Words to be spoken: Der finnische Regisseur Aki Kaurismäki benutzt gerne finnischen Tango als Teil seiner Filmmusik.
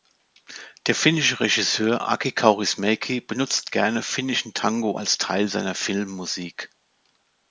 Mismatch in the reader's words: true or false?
false